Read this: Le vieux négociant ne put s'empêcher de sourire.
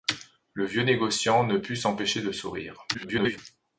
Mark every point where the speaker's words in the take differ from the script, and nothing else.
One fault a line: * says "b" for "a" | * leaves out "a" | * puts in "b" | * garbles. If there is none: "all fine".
* garbles